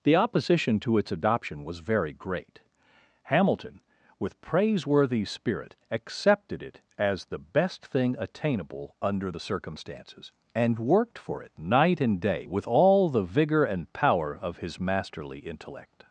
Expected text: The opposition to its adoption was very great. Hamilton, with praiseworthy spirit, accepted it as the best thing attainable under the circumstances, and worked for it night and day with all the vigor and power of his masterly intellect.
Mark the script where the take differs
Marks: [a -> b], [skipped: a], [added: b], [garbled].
The opposition to its adoption was very great. Hamilton, with praiseworthy spirit, accepted it as the best thing attainable under the circumstances, and worked for it night and day with all the vigor and power of his masterly intellect.